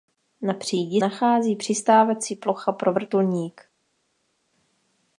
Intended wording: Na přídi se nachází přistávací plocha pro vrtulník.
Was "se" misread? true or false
true